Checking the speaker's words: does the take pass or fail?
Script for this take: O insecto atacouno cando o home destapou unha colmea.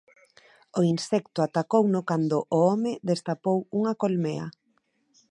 pass